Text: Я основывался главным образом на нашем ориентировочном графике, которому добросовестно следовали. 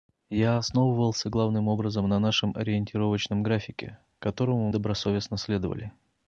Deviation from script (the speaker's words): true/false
false